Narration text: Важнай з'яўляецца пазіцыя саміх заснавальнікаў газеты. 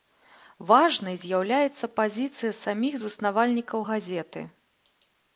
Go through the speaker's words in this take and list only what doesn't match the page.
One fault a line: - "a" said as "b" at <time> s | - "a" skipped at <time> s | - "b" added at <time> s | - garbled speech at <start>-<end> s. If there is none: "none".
none